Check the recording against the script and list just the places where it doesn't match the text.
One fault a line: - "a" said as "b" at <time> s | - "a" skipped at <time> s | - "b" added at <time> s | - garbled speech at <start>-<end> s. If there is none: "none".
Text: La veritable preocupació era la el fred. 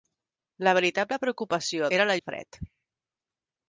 none